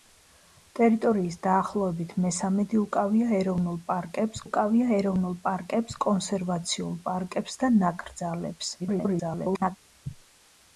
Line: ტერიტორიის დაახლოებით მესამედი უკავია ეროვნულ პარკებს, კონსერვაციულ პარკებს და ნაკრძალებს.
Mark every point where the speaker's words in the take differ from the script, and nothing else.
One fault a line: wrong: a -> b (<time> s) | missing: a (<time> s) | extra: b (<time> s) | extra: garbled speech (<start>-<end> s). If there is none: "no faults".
extra: უკავია ეროვნულ პარკებს (4.4 s)
extra: garbled speech (8.8-9.8 s)